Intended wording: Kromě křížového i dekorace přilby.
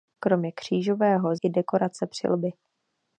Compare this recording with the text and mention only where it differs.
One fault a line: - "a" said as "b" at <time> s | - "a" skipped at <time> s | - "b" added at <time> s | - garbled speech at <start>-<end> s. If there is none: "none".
none